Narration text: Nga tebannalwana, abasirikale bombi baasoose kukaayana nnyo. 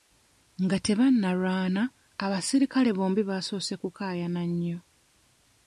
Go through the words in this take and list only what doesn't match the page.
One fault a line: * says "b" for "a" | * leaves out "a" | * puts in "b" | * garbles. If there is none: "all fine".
all fine